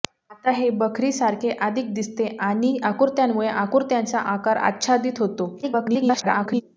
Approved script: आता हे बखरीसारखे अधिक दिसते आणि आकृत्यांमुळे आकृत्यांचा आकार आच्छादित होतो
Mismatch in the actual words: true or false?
true